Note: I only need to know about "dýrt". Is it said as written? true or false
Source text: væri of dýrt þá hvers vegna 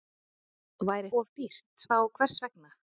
true